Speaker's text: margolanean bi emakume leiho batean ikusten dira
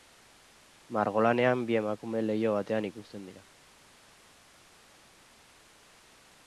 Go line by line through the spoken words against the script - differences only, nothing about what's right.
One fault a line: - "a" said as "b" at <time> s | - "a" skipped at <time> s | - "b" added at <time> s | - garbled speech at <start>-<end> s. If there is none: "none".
none